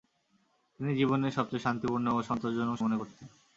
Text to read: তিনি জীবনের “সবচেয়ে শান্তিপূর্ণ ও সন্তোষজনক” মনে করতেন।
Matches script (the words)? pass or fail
pass